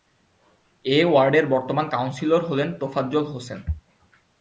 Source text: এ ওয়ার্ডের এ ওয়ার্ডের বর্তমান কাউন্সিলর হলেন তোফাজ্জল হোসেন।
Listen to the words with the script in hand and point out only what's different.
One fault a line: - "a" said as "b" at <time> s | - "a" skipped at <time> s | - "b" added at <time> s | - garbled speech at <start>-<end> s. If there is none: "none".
- "এ ওয়ার্ডের" skipped at 1.4 s